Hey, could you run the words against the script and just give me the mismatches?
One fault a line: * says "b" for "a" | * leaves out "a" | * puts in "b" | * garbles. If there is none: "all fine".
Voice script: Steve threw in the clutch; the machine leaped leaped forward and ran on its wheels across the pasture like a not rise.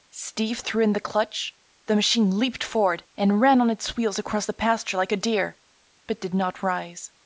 * leaves out "leaped"
* puts in "deer but did"